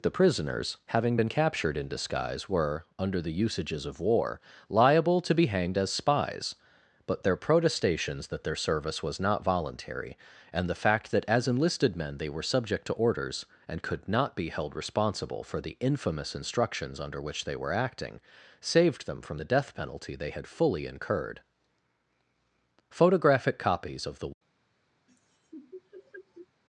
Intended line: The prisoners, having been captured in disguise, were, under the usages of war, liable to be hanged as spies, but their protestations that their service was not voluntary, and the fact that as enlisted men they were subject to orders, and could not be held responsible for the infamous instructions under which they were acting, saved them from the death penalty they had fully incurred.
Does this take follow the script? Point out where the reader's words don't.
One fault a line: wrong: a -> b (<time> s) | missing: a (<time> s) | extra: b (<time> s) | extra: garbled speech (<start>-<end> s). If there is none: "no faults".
extra: Photographic copies of the (22.9 s)